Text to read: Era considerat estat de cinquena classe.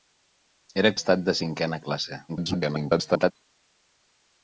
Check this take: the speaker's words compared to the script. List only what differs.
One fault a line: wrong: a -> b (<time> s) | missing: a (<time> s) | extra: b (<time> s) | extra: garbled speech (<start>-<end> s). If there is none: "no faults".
missing: considerat (0.9 s)
extra: garbled speech (2.3-3.3 s)